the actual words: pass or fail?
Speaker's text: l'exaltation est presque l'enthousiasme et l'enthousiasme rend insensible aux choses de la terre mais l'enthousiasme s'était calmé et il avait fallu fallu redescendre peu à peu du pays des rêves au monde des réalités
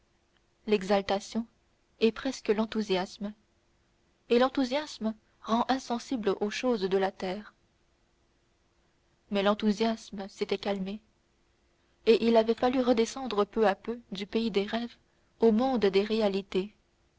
fail